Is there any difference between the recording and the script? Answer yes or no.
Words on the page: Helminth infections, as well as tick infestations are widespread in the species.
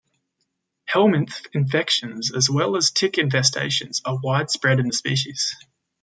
no